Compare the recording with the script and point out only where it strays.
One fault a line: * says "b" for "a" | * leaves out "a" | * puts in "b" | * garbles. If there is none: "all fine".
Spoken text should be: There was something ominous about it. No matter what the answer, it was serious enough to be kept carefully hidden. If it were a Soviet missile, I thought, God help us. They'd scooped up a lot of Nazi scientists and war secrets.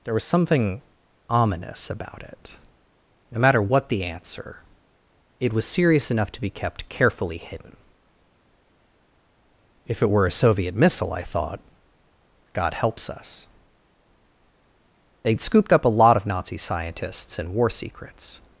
* says "helps" for "help"